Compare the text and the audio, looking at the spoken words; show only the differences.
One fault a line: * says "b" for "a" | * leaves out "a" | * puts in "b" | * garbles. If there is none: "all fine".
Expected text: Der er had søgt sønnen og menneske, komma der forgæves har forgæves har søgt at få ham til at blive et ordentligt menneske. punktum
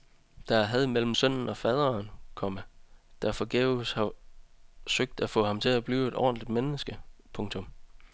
* says "mellem" for "søgt"
* says "faderen" for "menneske"
* leaves out "forgæves har"